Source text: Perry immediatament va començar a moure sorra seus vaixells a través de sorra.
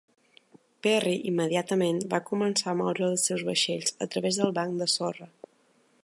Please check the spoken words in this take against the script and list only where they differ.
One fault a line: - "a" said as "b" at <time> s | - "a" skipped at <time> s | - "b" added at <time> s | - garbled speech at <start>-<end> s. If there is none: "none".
- "sorra" said as "els" at 3.1 s
- "del banc" added at 4.4 s